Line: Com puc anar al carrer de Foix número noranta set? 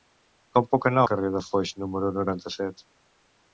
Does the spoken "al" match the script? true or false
false